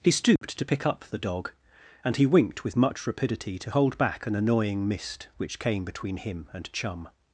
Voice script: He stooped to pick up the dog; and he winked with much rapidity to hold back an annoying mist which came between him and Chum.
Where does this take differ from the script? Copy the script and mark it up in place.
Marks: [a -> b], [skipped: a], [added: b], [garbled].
He stooped to pick up the dog; and he winked with much rapidity to hold back an annoying mist which came between him and Chum.